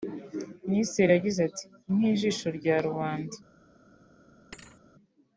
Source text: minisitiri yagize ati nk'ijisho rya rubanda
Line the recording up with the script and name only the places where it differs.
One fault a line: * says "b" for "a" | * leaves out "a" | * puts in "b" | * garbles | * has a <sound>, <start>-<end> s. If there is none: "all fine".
* has a thud, 4.5-4.8 s